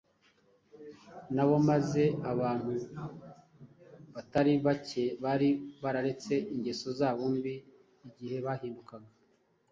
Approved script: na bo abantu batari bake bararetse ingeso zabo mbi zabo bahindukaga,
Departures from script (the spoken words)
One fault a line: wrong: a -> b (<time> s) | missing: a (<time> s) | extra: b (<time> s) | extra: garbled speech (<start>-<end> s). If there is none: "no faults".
extra: maze (1.7 s)
extra: bari (5.2 s)
wrong: zabo -> igihe (8.1 s)